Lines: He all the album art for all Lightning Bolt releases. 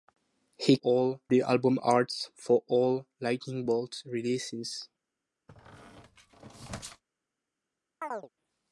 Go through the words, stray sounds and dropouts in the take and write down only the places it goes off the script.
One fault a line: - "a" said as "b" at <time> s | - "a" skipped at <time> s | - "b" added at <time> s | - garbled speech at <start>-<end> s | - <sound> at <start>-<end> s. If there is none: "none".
- squeak at 5.5-7.0 s
- chirp at 8.0-8.3 s